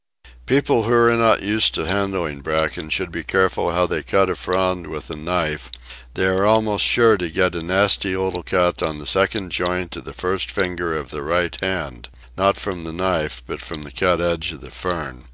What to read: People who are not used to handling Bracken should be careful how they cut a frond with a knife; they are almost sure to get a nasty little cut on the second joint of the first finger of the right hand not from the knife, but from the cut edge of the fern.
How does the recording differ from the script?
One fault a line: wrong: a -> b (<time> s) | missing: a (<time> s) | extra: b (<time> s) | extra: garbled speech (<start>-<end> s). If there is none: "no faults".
no faults